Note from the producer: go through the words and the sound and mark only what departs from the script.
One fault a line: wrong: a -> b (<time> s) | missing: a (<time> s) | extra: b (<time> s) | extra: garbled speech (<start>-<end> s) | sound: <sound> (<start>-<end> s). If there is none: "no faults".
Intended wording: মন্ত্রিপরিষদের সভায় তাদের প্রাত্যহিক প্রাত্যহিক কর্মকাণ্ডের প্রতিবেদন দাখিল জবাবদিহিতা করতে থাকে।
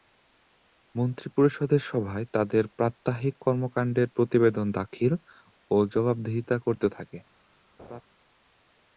missing: প্রাত্যহিক (3.4 s)
extra: ও (5.7 s)
sound: laugh (7.8-8.0 s)